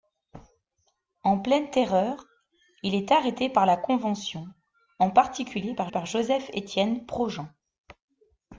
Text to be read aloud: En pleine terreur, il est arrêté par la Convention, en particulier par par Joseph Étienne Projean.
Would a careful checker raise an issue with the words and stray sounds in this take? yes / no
no